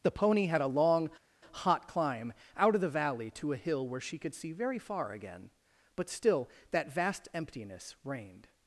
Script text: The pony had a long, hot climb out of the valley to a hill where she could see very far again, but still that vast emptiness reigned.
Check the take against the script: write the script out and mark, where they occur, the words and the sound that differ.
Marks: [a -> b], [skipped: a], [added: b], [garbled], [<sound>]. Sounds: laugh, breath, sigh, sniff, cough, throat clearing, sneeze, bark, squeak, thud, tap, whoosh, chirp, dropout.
The pony had a long, hot climb out of the valley to a hill where she could see very far again, but still that vast emptiness reigned.